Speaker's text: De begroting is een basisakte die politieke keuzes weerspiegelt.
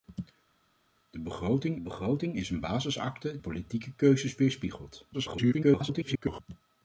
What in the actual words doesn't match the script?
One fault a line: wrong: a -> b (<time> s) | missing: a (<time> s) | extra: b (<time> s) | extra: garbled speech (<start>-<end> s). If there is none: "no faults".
extra: begroting (1.8 s)
missing: die (3.4 s)
extra: garbled speech (5.1-6.4 s)